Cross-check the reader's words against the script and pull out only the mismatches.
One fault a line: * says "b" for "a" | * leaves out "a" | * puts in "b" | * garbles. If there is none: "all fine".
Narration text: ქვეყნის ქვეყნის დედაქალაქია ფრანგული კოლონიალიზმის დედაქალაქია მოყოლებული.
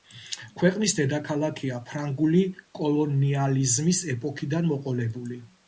* leaves out "ქვეყნის"
* says "ეპოქიდან" for "დედაქალაქია"